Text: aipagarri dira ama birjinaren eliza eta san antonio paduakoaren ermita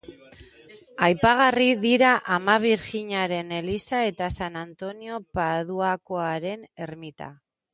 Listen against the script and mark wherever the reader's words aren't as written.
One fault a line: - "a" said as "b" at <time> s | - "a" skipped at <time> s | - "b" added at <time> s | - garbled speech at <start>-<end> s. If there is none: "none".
none